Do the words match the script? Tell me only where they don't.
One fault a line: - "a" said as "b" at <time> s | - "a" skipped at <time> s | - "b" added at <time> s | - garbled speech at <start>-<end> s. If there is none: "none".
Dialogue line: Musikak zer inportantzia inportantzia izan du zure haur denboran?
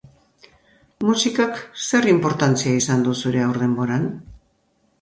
- "inportantzia" skipped at 2.8 s